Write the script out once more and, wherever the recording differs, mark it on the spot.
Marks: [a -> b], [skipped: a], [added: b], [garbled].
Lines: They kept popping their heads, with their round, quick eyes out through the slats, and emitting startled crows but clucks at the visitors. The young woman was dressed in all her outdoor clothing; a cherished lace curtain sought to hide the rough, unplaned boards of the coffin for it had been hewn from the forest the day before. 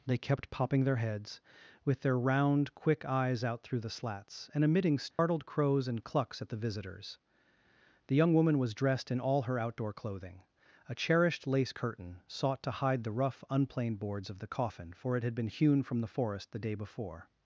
They kept popping their heads, with their round, quick eyes out through the slats, and emitting startled crows [but -> and] clucks at the visitors. The young woman was dressed in all her outdoor clothing; a cherished lace curtain sought to hide the rough, unplaned boards of the coffin for it had been hewn from the forest the day before.